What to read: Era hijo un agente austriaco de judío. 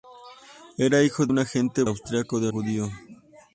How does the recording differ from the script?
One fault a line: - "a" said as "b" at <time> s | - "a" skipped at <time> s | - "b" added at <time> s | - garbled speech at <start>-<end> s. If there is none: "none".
none